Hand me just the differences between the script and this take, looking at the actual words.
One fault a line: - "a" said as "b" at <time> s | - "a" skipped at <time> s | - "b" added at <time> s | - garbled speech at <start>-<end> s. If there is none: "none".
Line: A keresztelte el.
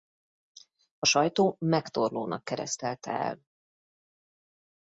- "sajtó Megtorlónak" added at 1.0 s